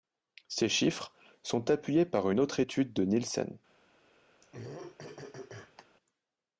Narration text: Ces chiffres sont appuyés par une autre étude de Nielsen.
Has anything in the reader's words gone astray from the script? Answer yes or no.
no